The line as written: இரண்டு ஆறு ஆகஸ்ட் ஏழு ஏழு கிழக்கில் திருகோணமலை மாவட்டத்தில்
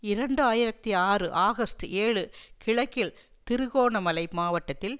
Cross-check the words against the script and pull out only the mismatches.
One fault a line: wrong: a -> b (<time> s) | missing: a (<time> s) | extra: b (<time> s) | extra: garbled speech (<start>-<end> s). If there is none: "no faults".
extra: ஆயிரத்தி (0.4 s)
missing: ஏழு (2.2 s)